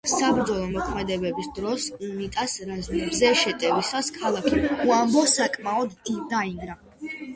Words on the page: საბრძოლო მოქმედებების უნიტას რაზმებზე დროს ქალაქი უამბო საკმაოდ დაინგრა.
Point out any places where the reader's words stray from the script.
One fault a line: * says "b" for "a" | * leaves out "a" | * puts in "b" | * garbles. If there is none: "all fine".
* puts in "დროს"
* says "შეტევისას" for "დროს"